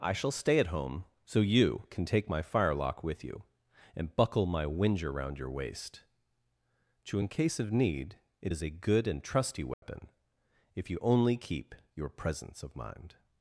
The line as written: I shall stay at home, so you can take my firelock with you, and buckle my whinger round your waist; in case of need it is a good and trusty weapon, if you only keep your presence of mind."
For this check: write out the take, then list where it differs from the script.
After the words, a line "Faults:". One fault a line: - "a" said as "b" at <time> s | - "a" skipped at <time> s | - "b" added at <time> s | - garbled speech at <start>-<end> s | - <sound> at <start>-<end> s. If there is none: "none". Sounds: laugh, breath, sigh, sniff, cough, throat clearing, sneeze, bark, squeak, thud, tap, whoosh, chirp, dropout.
I shall stay at home, so you can take my firelock with you, and buckle my whinger round your waist; to in case of need it is a good and trusty weapon, if you only keep your presence of mind."
Faults:
- "to" added at 7.0 s
- dropout at 9.7-9.8 s